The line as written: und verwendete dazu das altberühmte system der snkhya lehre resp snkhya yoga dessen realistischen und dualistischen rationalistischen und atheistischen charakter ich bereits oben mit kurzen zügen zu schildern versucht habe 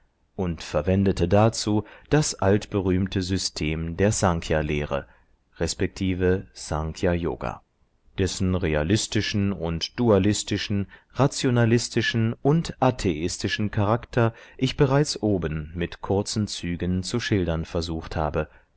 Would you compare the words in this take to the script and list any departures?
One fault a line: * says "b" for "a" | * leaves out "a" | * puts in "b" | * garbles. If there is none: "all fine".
all fine